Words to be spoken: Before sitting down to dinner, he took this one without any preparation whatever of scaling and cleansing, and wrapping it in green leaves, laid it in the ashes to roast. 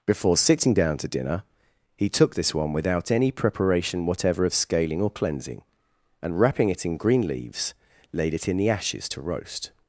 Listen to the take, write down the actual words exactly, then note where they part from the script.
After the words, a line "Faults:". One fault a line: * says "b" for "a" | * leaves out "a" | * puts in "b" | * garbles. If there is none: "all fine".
Before sitting down to dinner, he took this one without any preparation whatever of scaling or cleansing, and wrapping it in green leaves, laid it in the ashes to roast.
Faults:
* says "or" for "and"